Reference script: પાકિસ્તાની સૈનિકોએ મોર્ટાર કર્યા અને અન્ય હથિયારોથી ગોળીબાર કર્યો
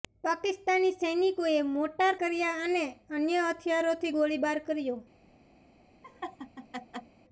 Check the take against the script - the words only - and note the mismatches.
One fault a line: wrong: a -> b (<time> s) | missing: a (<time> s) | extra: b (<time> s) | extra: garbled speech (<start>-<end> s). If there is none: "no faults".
no faults